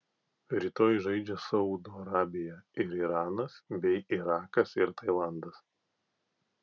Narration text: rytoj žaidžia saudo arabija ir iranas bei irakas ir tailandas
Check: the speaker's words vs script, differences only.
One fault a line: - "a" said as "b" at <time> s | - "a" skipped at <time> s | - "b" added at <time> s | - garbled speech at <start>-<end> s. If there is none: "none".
none